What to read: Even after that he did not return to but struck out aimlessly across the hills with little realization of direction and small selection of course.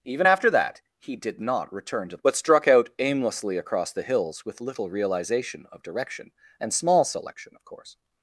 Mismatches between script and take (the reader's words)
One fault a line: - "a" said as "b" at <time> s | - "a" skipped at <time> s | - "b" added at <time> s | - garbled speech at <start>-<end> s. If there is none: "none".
none